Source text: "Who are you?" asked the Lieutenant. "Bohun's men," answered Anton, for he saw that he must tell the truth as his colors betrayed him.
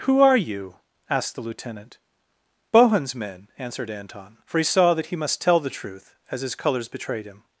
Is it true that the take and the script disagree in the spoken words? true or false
false